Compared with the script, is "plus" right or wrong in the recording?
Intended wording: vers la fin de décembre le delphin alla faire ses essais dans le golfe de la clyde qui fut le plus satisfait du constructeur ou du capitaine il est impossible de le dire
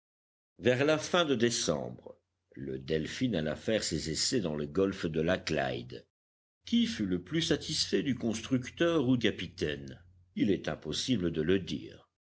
right